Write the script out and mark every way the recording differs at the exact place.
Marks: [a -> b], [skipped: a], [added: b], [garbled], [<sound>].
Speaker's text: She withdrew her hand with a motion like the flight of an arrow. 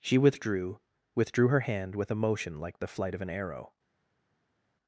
She withdrew [added: withdrew] her hand with a motion like the flight of an arrow.